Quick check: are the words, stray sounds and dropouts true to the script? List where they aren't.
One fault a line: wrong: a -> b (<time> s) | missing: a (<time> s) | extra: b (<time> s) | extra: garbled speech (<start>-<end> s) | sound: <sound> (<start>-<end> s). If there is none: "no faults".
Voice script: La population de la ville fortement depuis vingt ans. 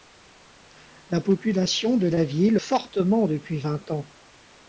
no faults